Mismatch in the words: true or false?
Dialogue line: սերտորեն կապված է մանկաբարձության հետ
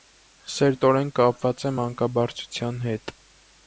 false